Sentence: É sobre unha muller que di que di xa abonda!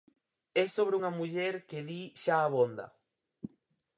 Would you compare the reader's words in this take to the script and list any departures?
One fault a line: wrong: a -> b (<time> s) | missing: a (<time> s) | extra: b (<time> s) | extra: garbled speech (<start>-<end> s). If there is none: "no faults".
missing: que di (2.0 s)